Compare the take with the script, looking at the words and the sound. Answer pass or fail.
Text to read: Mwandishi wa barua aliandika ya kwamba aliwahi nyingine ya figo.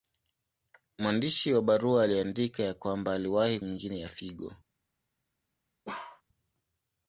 fail